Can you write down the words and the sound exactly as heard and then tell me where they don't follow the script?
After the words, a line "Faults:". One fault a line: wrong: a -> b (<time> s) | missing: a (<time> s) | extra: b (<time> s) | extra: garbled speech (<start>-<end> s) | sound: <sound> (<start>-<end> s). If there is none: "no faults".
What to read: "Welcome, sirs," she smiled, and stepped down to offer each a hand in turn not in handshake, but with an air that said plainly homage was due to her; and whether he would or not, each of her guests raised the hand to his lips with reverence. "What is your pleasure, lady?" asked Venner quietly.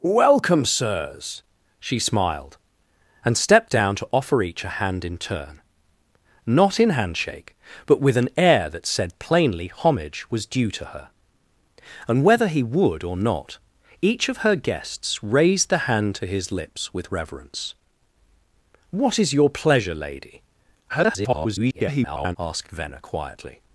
"Welcome, sirs," she smiled, and stepped down to offer each a hand in turn not in handshake, but with an air that said plainly homage was due to her; and whether he would or not, each of her guests raised the hand to his lips with reverence. "What is your pleasure, lady?" [garbled] asked Venner quietly.
Faults:
extra: garbled speech (20.9-22.4 s)